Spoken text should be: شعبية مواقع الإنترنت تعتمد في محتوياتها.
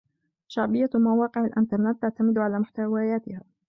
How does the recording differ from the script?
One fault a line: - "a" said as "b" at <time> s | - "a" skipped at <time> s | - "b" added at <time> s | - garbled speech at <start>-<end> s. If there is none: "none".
- "في" said as "على" at 2.4 s